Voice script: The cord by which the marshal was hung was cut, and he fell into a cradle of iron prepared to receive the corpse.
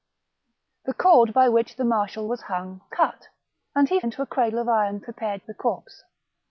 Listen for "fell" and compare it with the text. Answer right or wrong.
wrong